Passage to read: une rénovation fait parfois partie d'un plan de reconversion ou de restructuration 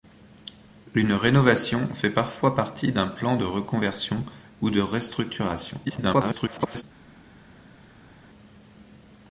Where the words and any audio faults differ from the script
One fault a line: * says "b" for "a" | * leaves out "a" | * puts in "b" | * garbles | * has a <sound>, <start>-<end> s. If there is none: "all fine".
* garbles